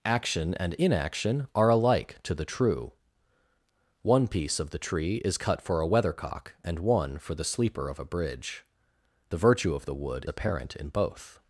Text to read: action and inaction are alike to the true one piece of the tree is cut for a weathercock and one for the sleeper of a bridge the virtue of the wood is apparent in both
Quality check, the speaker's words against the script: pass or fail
fail